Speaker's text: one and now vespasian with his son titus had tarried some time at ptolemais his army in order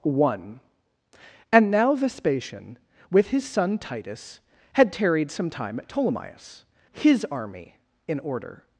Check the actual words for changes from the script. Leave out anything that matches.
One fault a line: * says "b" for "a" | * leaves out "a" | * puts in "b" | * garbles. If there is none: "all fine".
all fine